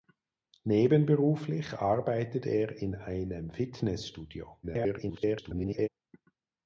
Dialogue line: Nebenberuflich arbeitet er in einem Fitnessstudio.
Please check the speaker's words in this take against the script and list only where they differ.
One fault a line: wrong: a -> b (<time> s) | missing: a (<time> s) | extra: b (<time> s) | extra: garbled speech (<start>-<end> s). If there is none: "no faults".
extra: garbled speech (4.6-5.9 s)